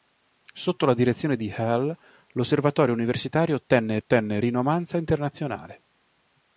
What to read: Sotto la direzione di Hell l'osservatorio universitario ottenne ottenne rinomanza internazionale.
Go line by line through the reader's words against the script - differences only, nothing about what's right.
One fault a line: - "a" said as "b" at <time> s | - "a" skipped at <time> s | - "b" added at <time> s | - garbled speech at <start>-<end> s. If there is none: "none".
none